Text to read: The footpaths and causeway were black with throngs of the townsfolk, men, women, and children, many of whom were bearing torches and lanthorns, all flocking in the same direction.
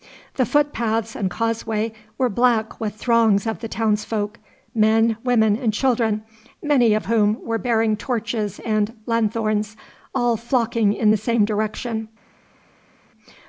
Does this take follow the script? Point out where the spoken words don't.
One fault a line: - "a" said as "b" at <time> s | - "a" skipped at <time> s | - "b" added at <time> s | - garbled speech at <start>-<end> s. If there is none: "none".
none